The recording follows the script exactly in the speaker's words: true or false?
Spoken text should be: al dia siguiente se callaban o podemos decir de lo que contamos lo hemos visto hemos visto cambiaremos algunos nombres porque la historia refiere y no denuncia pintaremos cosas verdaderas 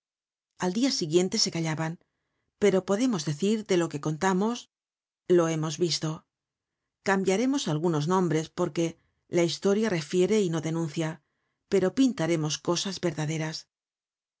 false